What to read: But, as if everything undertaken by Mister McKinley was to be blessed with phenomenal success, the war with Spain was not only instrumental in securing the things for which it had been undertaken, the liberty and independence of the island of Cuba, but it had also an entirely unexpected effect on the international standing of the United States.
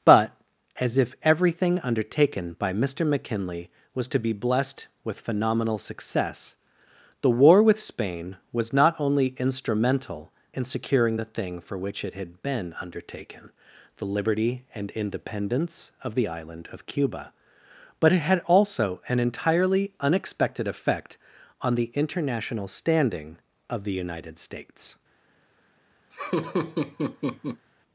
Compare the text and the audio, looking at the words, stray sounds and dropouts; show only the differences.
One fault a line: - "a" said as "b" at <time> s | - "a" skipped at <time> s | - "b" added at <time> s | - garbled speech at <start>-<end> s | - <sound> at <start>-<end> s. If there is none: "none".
- "things" said as "thing" at 11.2 s
- laugh at 26.1-27.7 s